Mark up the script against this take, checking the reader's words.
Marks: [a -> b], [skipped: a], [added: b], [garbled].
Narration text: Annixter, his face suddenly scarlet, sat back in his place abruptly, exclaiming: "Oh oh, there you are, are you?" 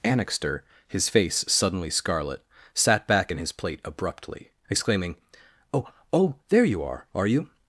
Annixter, his face suddenly scarlet, sat back in his [place -> plate] abruptly, exclaiming: "Oh oh, there you are, are you?"